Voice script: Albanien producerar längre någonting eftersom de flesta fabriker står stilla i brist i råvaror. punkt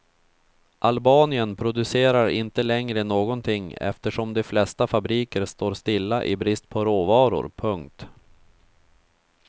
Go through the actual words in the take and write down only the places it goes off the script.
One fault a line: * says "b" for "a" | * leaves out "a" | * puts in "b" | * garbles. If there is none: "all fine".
* puts in "inte"
* says "på" for "i"